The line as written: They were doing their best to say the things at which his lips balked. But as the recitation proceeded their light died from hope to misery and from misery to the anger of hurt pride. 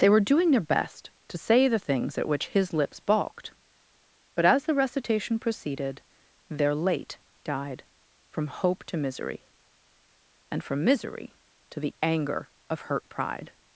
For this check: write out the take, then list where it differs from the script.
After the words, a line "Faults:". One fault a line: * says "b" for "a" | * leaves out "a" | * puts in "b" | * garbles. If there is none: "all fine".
They were doing their best to say the things at which his lips balked. But as the recitation proceeded their late died from hope to misery and from misery to the anger of hurt pride.
Faults:
* says "late" for "light"